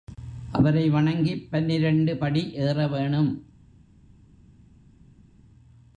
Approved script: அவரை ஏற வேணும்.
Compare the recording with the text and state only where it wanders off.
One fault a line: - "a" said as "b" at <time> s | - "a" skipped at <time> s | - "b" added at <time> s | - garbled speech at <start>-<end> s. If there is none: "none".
- "வணங்கிப் பன்னிரண்டு படி" added at 0.9 s